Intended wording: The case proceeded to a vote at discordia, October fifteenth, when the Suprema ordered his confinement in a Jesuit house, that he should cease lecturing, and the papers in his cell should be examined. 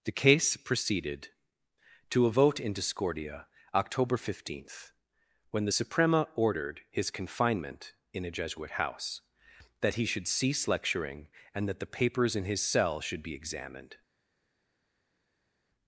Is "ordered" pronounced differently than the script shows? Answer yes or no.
no